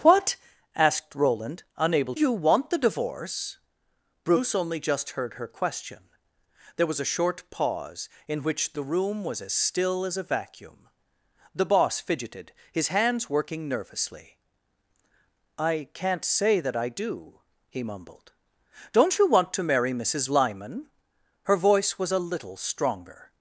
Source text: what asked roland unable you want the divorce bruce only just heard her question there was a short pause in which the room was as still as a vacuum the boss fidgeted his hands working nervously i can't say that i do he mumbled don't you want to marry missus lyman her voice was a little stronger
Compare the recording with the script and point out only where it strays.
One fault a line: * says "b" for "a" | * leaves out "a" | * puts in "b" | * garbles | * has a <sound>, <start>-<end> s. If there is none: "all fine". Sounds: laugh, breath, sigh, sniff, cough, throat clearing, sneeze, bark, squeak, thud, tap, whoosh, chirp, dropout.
all fine